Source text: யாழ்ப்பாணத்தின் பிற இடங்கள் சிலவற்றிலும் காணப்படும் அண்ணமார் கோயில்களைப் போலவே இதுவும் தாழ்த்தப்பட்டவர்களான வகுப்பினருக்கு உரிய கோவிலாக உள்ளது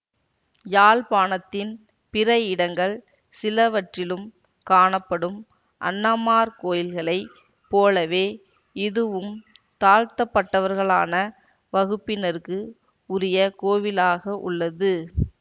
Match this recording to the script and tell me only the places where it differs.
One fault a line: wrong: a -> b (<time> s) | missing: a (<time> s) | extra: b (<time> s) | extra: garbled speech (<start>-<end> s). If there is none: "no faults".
no faults